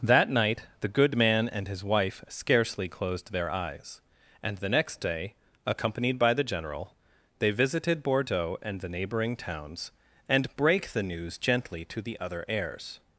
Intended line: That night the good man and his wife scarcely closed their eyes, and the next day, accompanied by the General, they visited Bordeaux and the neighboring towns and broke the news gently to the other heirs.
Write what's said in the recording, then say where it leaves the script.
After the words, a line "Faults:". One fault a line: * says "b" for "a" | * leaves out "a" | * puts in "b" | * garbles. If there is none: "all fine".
That night the good man and his wife scarcely closed their eyes, and the next day, accompanied by the General, they visited Bordeaux and the neighboring towns and brake the news gently to the other heirs.
Faults:
* says "brake" for "broke"